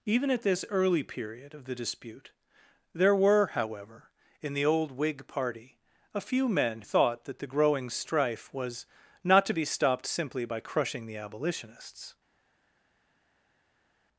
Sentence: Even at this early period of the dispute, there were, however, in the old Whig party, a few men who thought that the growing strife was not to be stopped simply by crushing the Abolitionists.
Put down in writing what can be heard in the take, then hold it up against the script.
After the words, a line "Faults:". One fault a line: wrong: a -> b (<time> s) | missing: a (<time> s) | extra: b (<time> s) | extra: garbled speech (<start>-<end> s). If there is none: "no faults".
Even at this early period of the dispute, there were, however, in the old Whig party, a few men thought that the growing strife was not to be stopped simply by crushing the Abolitionists.
Faults:
missing: who (6.8 s)